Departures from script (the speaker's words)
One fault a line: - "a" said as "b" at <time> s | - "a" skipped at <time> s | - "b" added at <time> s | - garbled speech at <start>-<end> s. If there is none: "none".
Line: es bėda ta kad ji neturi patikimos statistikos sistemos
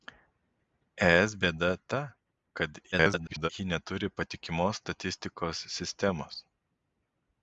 - garbled speech at 2.9-3.5 s